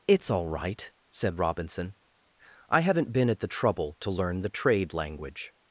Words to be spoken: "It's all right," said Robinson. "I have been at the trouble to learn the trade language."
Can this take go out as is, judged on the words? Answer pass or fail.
fail